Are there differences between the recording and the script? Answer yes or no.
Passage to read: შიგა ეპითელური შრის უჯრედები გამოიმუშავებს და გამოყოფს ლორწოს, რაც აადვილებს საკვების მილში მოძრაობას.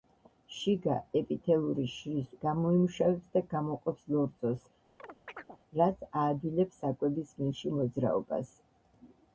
yes